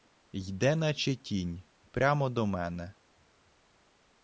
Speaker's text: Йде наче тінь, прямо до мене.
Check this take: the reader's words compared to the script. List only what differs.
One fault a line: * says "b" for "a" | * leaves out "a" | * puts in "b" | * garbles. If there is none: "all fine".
all fine